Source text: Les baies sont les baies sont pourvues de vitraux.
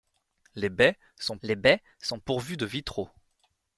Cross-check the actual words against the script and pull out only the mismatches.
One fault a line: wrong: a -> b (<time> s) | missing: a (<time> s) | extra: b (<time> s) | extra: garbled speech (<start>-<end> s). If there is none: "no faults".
no faults